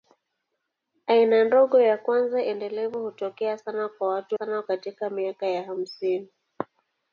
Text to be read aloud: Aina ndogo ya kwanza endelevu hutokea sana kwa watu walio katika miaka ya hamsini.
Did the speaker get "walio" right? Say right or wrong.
wrong